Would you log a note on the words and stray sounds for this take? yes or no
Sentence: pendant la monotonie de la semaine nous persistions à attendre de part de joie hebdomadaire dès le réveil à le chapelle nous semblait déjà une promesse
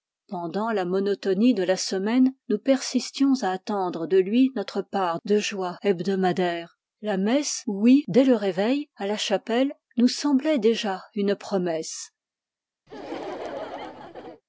yes